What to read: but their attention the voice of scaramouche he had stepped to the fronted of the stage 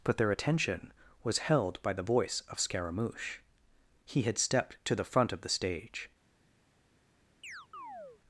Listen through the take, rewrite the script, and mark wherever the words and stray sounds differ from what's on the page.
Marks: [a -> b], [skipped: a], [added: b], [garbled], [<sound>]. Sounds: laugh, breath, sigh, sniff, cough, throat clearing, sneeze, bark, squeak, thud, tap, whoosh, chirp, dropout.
but their attention [added: was held by] the voice of scaramouche he had stepped to the [fronted -> front] of the stage [chirp]